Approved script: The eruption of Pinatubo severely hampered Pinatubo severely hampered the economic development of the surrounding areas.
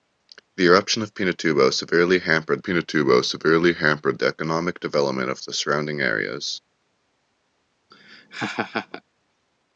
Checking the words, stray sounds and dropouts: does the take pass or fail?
fail